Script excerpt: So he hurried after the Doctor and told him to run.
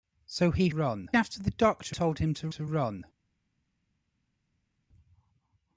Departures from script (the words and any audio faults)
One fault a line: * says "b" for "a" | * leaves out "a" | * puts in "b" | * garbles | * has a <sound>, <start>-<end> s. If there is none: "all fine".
* says "run" for "hurried"
* leaves out "and"
* puts in "to"